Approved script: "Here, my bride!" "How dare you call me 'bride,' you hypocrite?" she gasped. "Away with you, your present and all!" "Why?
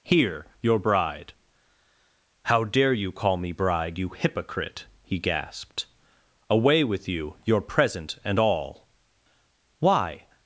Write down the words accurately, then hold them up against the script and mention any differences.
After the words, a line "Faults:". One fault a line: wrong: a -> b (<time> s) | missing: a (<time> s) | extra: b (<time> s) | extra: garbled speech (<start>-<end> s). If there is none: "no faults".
"Here, your bride!" "How dare you call me 'bride,' you hypocrite?" he gasped. "Away with you, your present and all!" "Why?
Faults:
wrong: my -> your (0.6 s)
wrong: she -> he (5.0 s)